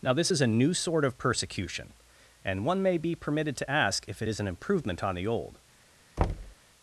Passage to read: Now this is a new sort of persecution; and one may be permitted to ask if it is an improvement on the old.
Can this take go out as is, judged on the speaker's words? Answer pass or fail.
pass